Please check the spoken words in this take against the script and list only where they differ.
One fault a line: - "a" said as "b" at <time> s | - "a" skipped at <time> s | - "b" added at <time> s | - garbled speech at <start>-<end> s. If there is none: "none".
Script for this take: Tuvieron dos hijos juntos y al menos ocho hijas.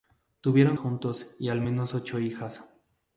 - "dos hijos" skipped at 0.8 s